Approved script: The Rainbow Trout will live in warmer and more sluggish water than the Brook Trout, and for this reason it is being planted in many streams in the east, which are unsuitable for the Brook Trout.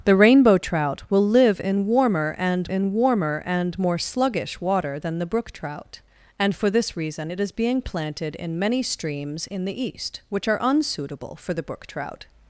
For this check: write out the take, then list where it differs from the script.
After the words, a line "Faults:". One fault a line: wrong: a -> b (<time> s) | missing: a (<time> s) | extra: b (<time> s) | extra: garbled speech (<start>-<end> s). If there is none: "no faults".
The Rainbow Trout will live in warmer and in warmer and more sluggish water than the Brook Trout, and for this reason it is being planted in many streams in the east, which are unsuitable for the Brook Trout.
Faults:
extra: in warmer and (2.7 s)